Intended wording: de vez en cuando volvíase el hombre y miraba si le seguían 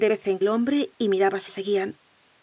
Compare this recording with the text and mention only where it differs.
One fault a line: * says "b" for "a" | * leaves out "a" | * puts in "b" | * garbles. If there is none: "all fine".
* leaves out "cuando volvíase"
* leaves out "le"